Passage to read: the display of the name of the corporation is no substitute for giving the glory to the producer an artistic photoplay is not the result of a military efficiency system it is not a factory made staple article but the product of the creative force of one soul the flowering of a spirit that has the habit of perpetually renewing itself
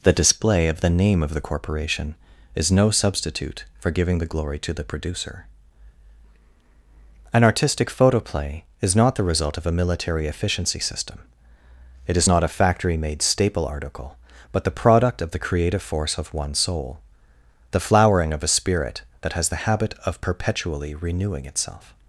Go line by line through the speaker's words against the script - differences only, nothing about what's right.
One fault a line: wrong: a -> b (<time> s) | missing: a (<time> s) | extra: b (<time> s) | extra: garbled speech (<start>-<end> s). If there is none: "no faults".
no faults